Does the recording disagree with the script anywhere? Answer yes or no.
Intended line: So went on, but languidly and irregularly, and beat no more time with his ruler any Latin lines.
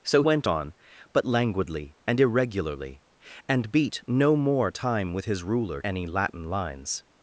no